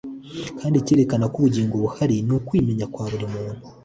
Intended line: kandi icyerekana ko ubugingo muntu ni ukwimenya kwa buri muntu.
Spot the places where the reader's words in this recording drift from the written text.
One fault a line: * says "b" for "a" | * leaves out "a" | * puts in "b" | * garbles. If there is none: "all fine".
* says "buhari" for "muntu"